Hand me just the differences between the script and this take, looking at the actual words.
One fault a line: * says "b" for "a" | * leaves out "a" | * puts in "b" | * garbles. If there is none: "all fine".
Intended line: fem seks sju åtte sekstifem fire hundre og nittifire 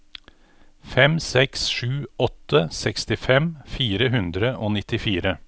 all fine